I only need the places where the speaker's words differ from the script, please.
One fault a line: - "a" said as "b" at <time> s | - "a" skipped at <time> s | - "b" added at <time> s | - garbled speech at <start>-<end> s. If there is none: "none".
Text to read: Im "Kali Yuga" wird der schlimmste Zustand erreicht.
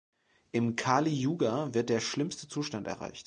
none